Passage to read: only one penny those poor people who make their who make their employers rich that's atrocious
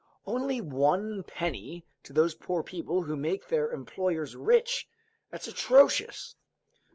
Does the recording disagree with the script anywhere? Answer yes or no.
yes